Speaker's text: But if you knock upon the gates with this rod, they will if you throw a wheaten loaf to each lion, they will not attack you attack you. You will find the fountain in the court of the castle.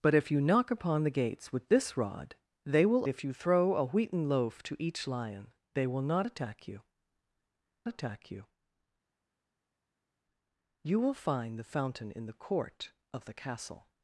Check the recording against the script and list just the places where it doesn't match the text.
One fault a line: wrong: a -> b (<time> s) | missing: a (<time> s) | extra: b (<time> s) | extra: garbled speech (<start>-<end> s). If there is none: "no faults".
no faults